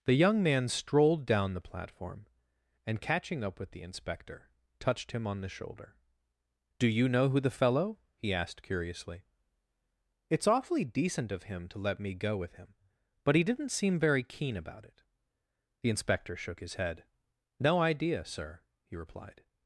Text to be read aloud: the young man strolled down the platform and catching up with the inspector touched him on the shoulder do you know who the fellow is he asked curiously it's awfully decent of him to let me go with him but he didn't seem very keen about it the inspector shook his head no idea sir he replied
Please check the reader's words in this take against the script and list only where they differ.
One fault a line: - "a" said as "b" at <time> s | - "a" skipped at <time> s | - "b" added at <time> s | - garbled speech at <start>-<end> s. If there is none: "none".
- "is" skipped at 8.0 s